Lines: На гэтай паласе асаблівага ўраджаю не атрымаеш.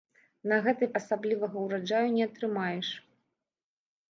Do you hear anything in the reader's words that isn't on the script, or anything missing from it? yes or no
yes